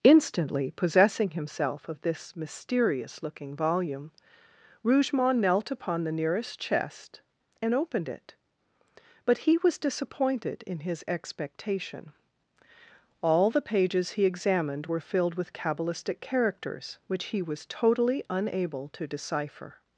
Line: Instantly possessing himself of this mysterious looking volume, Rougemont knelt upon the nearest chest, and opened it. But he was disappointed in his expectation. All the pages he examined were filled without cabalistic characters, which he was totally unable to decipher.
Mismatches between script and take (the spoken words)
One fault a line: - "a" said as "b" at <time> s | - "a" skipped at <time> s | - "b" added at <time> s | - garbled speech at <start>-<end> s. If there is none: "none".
- "without" said as "with" at 15.3 s